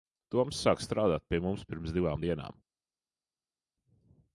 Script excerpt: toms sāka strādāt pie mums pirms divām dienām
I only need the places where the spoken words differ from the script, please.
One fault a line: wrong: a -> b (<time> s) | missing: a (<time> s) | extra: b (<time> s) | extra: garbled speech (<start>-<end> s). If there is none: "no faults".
no faults